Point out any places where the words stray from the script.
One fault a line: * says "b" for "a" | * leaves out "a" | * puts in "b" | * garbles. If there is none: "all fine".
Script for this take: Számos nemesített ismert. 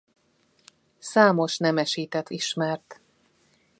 all fine